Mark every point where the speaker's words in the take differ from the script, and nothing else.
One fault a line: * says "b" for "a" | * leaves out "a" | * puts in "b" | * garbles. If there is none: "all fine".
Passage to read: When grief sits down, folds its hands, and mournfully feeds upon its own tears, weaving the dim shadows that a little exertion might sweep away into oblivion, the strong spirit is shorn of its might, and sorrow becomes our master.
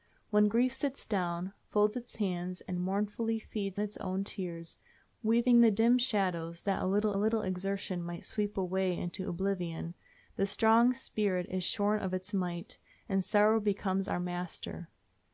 * leaves out "upon"
* puts in "little"